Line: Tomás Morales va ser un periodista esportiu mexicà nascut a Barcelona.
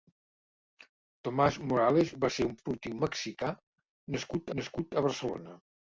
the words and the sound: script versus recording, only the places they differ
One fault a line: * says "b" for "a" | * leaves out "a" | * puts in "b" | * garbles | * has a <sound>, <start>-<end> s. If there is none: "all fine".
* leaves out "periodista"
* puts in "nascut"